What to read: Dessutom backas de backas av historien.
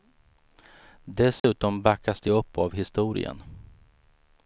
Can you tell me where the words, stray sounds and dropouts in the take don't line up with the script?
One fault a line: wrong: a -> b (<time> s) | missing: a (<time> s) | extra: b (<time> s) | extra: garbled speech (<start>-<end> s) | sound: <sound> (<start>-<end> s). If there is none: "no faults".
sound: dropout (1.4-1.4 s)
wrong: backas -> upp (2.3 s)